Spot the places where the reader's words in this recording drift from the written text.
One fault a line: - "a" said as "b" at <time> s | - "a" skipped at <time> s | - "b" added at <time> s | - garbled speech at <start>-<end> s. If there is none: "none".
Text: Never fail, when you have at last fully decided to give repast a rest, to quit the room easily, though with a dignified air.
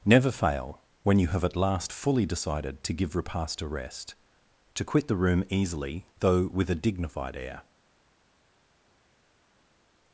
none